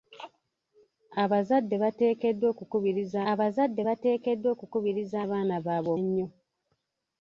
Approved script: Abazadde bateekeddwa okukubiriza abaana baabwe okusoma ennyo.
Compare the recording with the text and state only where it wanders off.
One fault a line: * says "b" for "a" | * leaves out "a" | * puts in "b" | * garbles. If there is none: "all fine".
* puts in "abazadde bateekeddwa okukubiriza"
* leaves out "okusoma"